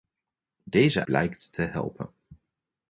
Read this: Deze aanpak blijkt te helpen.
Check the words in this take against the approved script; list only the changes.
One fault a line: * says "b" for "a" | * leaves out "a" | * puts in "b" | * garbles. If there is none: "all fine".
* leaves out "aanpak"